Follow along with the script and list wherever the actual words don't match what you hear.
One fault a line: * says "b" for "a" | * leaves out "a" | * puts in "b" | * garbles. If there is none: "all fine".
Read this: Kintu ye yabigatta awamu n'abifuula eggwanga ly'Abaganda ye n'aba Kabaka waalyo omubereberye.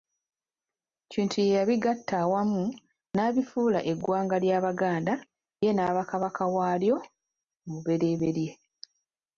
all fine